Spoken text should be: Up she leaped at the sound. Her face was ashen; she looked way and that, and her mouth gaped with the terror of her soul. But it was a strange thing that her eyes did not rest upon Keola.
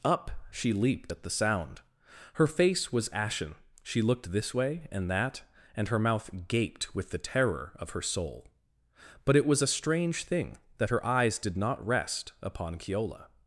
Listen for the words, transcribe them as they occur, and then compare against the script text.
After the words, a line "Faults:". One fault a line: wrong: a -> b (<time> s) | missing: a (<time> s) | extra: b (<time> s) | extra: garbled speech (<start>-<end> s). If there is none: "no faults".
Up she leaped at the sound. Her face was ashen; she looked this way and that, and her mouth gaped with the terror of her soul. But it was a strange thing that her eyes did not rest upon Keola.
Faults:
extra: this (4.3 s)